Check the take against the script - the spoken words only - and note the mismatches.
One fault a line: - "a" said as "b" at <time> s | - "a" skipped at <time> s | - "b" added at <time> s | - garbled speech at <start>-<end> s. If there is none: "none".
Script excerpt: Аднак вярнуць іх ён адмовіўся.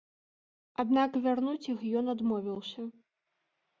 none